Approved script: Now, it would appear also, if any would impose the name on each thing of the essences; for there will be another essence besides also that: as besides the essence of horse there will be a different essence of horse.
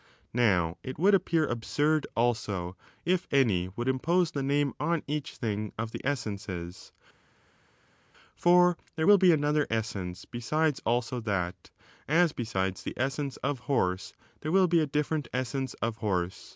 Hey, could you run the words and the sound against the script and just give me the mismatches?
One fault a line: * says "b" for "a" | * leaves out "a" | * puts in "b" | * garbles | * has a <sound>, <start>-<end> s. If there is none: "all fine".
* puts in "absurd"